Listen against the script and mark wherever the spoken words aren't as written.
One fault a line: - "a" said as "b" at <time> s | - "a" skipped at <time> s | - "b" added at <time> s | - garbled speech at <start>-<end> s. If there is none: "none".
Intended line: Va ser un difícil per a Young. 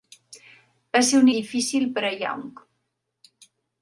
none